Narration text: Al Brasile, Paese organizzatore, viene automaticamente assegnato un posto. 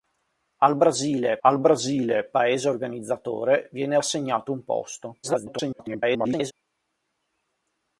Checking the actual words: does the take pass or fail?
fail